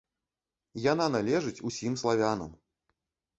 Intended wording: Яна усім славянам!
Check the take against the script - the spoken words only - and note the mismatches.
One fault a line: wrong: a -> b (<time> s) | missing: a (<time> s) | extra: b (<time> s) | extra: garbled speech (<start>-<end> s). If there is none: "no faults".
extra: належыць (1.2 s)